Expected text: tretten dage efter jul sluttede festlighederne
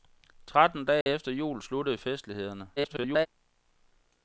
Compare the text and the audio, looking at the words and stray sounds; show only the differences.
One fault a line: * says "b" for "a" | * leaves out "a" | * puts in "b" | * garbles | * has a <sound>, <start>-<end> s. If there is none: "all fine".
* has a dropout, 1.0-1.1 s
* garbles